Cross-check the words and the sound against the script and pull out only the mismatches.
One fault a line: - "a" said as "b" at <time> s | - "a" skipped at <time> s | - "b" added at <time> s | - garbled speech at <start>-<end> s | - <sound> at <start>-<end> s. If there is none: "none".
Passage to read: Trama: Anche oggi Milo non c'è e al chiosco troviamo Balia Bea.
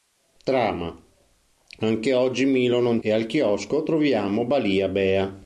- "c'è" skipped at 3.0 s